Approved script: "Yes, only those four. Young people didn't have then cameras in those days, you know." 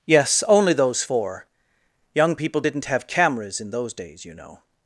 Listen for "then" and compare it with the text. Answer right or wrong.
wrong